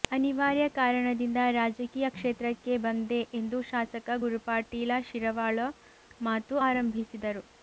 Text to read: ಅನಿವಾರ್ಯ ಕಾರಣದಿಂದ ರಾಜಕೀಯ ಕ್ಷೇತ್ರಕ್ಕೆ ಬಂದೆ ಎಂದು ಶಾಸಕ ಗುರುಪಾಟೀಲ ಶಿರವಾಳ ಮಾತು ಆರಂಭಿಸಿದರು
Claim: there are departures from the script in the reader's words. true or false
false